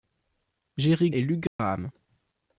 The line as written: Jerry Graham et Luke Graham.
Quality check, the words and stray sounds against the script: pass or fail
fail